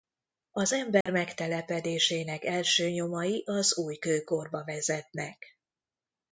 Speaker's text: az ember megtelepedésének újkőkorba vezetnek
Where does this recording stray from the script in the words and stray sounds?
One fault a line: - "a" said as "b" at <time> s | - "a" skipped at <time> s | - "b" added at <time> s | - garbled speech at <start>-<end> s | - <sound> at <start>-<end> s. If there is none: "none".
- dropout at 1.0-1.1 s
- "első nyomai az" added at 2.4 s